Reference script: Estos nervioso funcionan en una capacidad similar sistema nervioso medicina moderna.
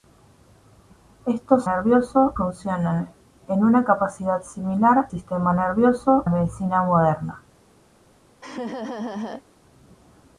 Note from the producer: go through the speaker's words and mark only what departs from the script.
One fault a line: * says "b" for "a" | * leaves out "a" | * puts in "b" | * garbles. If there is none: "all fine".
all fine